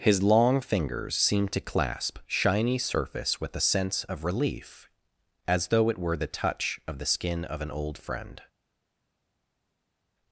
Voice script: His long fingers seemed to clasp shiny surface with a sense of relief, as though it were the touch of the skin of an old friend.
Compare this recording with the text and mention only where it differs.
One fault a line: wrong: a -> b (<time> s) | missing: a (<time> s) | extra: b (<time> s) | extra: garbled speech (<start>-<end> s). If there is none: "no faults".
no faults